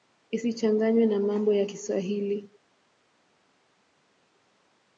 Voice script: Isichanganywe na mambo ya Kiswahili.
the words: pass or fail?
pass